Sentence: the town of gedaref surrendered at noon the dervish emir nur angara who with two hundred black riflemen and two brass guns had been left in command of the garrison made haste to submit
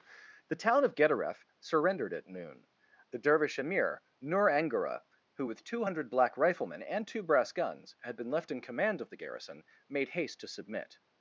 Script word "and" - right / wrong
right